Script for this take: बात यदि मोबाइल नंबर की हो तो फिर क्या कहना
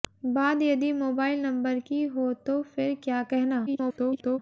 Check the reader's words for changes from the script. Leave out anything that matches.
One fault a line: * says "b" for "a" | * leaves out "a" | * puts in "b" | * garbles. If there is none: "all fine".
* garbles